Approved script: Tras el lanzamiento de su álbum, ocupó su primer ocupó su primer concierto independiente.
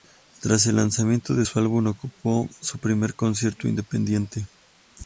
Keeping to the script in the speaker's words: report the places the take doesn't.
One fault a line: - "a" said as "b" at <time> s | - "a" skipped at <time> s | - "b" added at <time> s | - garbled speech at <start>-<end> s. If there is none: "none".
- "ocupó su primer" skipped at 3.1 s